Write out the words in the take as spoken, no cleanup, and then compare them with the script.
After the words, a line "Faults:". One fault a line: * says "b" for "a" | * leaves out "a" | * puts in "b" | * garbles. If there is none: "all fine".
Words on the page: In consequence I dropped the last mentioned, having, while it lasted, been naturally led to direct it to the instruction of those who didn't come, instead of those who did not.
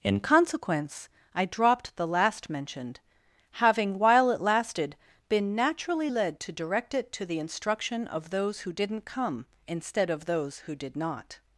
In consequence I dropped the last mentioned, having, while it lasted, been naturally led to direct it to the instruction of those who didn't come, instead of those who did not.
Faults:
all fine